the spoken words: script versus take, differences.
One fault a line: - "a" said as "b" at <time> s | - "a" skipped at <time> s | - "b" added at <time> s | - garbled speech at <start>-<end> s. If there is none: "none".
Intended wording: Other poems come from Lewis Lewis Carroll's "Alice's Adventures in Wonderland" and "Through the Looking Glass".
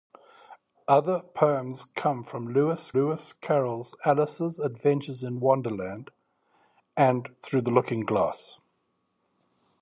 none